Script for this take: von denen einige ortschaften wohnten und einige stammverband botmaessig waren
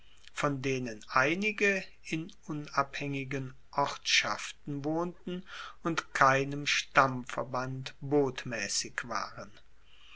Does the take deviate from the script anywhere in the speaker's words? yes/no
yes